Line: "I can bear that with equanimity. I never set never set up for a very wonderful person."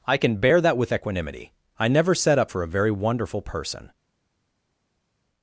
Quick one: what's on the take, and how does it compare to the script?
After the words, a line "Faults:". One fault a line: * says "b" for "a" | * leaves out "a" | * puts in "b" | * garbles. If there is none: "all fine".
"I can bear that with equanimity. I never set up for a very wonderful person."
Faults:
* leaves out "never set"